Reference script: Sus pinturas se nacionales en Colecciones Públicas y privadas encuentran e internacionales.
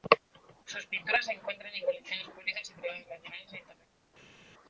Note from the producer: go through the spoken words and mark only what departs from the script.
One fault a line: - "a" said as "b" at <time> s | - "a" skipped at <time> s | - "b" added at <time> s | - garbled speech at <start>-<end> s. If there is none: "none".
- "nacionales" said as "encuentran" at 1.3 s
- "encuentran" said as "nacionales" at 3.1 s